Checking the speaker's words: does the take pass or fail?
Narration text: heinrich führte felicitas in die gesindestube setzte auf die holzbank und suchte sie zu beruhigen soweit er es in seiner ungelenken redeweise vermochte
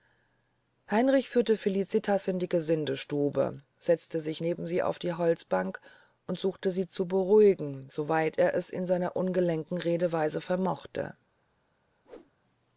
fail